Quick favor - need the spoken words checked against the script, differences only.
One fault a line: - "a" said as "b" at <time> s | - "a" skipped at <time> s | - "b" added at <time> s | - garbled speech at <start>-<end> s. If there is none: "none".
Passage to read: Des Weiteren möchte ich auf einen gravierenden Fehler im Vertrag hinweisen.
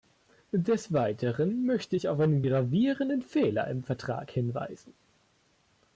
none